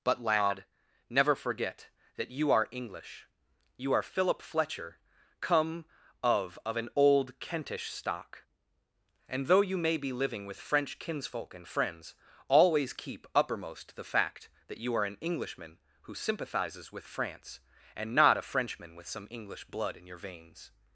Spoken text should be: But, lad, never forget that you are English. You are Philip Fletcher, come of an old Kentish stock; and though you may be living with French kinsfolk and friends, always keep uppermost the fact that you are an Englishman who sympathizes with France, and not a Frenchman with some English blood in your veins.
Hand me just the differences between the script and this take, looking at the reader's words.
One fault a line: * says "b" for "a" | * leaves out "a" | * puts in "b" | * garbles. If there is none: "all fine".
* puts in "of"